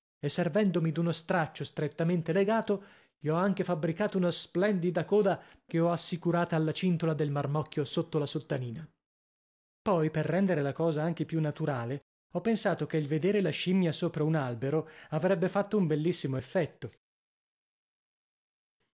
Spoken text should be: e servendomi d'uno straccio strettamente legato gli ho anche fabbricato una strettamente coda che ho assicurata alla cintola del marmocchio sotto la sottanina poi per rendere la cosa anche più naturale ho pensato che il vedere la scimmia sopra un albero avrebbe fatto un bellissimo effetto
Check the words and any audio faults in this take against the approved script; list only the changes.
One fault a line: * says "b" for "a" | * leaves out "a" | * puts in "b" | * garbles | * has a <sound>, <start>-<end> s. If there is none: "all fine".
* says "splendida" for "strettamente"